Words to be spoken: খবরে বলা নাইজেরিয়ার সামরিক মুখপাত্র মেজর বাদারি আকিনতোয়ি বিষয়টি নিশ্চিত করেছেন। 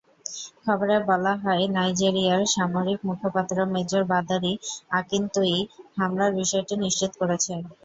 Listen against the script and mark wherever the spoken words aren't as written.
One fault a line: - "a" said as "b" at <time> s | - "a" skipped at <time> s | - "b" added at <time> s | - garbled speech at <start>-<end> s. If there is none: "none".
- "হয়" added at 1.4 s
- "হামলার" added at 6.0 s